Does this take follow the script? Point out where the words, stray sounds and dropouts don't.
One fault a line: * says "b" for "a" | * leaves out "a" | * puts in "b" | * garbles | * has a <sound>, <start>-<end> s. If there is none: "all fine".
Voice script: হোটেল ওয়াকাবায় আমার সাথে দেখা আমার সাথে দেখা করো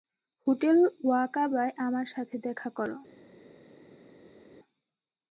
* leaves out "আমার সাথে দেখা"